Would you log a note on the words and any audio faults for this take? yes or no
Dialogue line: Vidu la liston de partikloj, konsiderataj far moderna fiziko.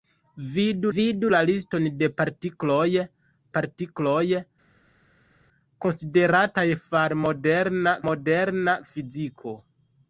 yes